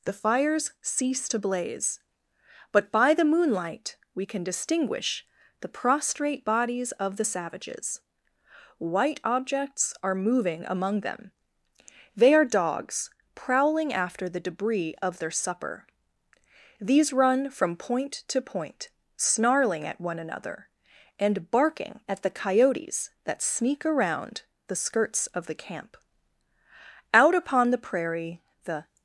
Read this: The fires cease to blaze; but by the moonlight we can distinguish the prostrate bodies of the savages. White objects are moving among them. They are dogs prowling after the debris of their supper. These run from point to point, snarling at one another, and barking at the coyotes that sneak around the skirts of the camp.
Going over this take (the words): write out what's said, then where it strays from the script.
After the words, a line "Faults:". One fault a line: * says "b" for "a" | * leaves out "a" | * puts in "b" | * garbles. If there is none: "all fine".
The fires cease to blaze; but by the moonlight we can distinguish the prostrate bodies of the savages. White objects are moving among them. They are dogs prowling after the debris of their supper. These run from point to point, snarling at one another, and barking at the coyotes that sneak around the skirts of the camp. Out upon the prairie the
Faults:
* puts in "Out upon the prairie the"